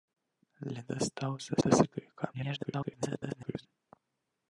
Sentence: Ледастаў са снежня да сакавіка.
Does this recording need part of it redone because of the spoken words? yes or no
yes